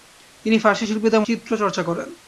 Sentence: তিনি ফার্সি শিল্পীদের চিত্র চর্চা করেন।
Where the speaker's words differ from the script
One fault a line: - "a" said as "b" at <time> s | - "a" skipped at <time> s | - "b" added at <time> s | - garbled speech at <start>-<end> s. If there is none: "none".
none